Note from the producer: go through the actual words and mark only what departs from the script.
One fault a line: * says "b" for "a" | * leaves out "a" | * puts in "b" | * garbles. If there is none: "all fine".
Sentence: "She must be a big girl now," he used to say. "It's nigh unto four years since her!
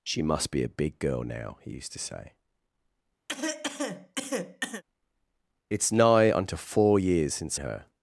all fine